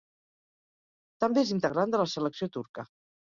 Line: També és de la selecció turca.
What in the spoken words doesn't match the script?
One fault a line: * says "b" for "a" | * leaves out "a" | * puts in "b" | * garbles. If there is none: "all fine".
* puts in "integrant"